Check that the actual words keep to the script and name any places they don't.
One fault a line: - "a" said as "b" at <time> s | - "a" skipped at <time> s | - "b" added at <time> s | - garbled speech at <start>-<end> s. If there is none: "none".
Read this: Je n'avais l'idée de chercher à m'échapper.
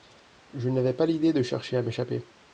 - "pas" added at 0.9 s